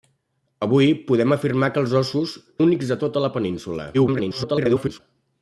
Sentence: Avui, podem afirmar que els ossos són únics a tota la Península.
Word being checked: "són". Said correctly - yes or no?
no